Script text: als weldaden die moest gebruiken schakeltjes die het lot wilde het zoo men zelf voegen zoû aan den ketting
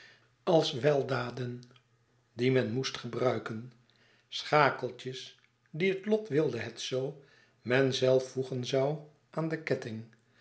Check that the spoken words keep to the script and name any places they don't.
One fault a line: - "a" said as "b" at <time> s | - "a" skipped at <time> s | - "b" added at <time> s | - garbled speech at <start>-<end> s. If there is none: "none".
- "men" added at 2.5 s